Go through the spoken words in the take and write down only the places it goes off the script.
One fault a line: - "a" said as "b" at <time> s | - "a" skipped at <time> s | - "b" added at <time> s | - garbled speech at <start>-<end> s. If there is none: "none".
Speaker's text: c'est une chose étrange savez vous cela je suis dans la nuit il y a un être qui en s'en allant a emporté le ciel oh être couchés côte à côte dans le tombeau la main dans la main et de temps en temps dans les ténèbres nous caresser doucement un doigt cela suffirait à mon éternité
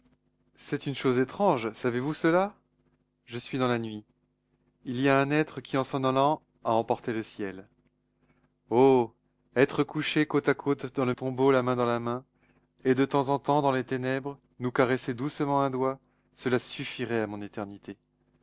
none